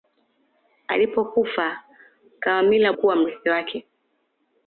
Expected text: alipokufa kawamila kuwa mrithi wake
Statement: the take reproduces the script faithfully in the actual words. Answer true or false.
true